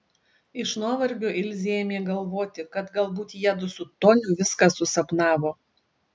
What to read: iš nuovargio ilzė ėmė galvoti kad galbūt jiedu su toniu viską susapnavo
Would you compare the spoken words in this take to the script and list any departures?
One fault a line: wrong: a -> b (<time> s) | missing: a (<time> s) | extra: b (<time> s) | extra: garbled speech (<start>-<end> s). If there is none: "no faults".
no faults